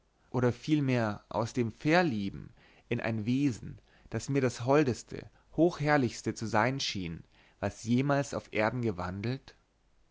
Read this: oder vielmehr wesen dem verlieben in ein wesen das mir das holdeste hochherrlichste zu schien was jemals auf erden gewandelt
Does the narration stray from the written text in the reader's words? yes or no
yes